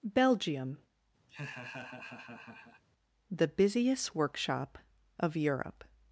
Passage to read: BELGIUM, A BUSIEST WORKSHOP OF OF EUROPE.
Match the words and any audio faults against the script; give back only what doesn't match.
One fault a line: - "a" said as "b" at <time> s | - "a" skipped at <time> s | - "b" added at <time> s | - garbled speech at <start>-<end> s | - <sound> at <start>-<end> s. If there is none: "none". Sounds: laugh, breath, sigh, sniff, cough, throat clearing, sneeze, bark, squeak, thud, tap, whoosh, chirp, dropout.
- laugh at 1.3-2.8 s
- "A" said as "THE" at 3.3 s
- "OF" skipped at 5.4 s